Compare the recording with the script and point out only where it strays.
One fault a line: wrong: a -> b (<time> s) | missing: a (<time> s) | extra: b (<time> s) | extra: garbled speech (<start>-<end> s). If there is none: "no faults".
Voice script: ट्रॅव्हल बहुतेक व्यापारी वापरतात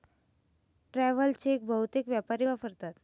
extra: चेक (1.3 s)